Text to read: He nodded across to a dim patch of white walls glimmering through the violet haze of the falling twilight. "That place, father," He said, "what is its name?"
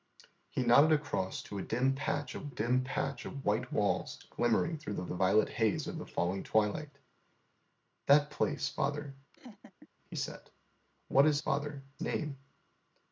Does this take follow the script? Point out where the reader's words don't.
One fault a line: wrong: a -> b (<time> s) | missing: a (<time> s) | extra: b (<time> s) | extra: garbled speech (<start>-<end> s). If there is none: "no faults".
extra: dim patch of (2.5 s)
extra: the (5.1 s)
wrong: its -> father (11.4 s)